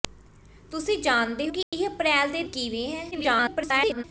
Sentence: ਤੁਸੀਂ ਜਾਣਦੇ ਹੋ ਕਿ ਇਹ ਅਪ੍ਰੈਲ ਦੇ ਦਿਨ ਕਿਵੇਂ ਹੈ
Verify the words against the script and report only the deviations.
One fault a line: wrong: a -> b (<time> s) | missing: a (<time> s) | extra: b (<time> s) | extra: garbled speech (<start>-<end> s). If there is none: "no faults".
missing: ਹੋ (1.5 s)
missing: ਦਿਨ (2.4 s)
extra: garbled speech (3.1-4.0 s)